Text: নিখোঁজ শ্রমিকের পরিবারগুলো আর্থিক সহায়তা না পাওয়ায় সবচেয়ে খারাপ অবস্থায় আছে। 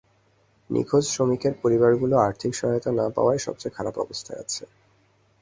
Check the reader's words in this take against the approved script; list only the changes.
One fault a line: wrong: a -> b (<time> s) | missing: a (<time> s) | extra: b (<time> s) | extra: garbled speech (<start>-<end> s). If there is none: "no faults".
no faults